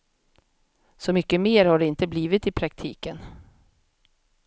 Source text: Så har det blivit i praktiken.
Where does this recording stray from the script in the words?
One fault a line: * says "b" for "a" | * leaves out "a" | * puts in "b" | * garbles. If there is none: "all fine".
* puts in "mycket mer"
* puts in "inte"